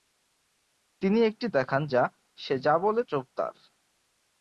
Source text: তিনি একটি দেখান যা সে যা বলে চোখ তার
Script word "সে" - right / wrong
right